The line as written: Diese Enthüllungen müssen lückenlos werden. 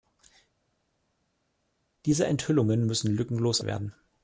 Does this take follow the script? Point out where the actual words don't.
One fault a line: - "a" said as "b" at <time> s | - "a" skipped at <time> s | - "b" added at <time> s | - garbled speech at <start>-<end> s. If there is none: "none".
none